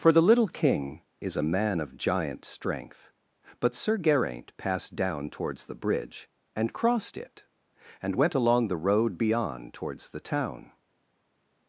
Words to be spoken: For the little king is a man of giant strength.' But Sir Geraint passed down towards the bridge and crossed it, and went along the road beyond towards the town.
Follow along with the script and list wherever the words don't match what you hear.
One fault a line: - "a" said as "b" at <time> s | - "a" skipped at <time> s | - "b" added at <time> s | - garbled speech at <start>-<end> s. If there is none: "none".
none